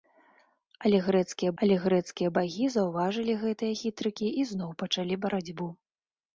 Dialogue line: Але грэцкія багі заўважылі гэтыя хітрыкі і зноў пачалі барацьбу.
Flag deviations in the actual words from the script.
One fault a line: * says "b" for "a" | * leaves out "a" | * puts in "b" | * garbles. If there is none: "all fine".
* puts in "але грэцкія"